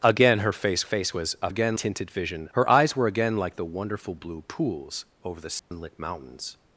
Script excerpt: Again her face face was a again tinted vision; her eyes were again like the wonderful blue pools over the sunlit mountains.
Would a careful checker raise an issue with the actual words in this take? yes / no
no